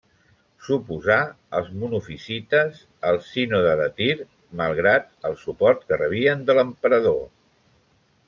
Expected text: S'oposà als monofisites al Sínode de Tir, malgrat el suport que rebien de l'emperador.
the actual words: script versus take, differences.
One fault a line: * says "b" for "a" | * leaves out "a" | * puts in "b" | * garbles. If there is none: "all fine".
all fine